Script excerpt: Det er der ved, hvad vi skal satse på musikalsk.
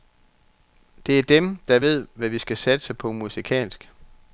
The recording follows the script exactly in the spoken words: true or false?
false